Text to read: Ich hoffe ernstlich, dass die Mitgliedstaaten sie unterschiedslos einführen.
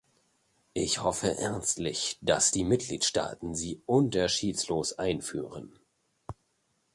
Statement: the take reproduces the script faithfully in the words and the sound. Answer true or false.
true